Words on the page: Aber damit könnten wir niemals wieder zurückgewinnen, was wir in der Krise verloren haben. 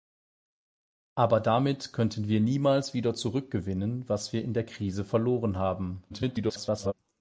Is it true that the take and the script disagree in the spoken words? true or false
true